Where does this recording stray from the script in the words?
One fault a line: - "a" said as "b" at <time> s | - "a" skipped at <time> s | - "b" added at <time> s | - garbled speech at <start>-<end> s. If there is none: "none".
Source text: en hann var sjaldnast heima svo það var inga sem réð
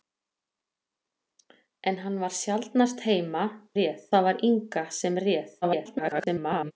- "svo" said as "réð" at 3.8 s
- garbled speech at 5.6-6.7 s